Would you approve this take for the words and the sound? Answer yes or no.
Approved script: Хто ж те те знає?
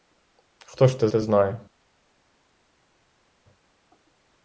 yes